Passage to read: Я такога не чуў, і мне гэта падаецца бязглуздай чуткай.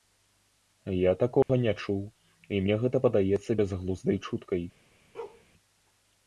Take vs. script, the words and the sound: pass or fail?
fail